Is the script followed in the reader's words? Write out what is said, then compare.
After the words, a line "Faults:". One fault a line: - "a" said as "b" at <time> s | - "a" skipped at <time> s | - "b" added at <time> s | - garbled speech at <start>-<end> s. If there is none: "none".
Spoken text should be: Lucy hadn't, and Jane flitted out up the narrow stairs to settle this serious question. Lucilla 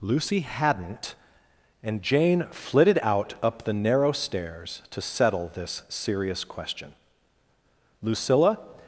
Lucy hadn't, and Jane flitted out up the narrow stairs to settle this serious question. Lucilla
Faults:
none